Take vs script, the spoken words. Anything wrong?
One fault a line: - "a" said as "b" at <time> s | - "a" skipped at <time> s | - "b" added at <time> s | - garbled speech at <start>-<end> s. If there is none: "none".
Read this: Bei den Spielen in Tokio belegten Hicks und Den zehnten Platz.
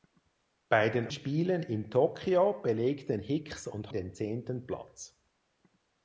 none